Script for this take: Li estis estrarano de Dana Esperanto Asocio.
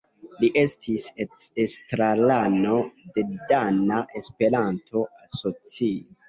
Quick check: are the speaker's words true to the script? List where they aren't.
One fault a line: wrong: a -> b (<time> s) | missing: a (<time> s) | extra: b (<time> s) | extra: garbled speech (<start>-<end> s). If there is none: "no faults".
no faults